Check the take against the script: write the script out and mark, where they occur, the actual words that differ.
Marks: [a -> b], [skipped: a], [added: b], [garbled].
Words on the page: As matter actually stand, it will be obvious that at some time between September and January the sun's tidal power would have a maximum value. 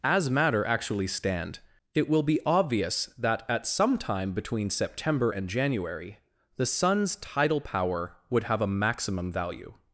As matter actually stand, it will be obvious that at some time between September and January the sun's tidal power would have a maximum value.